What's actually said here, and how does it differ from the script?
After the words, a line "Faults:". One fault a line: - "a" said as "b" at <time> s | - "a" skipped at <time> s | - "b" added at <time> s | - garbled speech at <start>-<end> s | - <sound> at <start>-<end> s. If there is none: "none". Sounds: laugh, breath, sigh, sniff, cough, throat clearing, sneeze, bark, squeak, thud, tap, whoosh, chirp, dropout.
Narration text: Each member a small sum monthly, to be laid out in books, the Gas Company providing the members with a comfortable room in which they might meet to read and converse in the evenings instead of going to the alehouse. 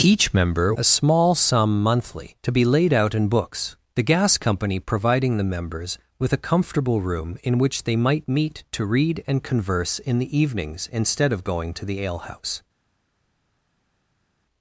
Each member a small sum monthly, to be laid out in books, the Gas Company providing the members with a comfortable room in which they might meet to read and converse in the evenings instead of going to the alehouse.
Faults:
none